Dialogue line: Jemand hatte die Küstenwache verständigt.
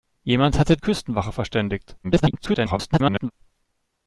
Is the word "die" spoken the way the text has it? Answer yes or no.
no